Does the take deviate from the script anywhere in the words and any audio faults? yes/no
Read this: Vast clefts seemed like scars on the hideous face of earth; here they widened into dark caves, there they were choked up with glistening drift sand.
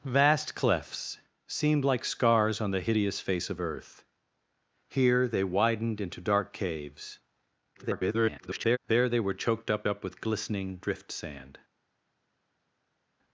yes